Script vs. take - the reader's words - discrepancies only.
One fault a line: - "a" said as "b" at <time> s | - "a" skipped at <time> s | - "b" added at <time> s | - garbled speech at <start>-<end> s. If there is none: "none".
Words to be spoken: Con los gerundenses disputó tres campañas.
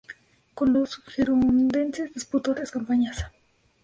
none